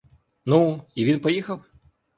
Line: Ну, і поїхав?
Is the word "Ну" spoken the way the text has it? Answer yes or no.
yes